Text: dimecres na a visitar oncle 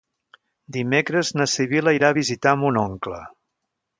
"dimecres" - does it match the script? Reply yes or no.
yes